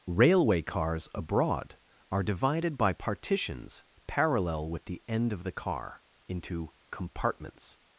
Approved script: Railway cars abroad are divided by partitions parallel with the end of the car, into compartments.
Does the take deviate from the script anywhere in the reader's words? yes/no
no